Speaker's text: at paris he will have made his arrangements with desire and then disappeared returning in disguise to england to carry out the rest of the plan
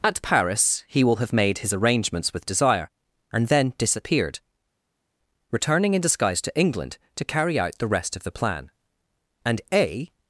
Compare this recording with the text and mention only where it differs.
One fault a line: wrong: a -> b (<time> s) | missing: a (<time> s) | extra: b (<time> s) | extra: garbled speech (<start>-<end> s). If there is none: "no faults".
extra: and a (9.4 s)